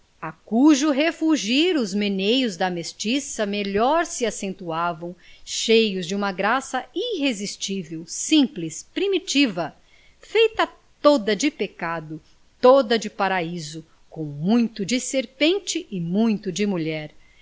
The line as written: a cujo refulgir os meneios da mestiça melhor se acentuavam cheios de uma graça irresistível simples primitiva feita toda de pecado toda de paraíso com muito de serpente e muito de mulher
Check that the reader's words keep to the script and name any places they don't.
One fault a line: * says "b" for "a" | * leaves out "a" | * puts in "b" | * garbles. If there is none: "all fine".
all fine